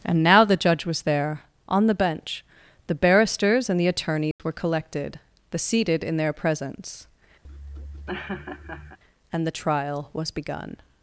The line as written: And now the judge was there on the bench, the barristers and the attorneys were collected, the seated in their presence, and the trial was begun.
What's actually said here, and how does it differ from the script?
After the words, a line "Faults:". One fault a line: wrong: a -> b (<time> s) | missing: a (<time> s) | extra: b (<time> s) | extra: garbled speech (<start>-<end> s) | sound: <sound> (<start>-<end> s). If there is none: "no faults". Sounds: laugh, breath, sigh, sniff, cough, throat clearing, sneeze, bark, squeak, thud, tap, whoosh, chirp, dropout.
And now the judge was there on the bench, the barristers and the attorneys were collected, the seated in their presence, and the trial was begun.
Faults:
sound: dropout (4.3-4.4 s)
sound: laugh (7.4-9.0 s)